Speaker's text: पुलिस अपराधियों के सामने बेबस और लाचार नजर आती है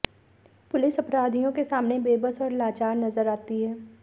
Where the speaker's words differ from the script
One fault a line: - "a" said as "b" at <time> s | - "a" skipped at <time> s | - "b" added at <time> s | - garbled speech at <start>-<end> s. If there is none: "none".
none